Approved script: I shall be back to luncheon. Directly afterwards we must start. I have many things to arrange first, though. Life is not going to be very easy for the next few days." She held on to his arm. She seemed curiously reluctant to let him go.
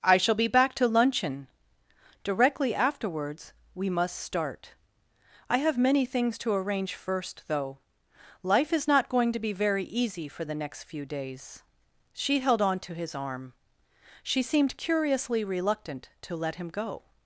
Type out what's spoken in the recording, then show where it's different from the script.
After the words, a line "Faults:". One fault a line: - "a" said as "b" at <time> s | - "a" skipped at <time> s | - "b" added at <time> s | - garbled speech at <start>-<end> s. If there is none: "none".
I shall be back to luncheon. Directly afterwards we must start. I have many things to arrange first, though. Life is not going to be very easy for the next few days." She held on to his arm. She seemed curiously reluctant to let him go.
Faults:
none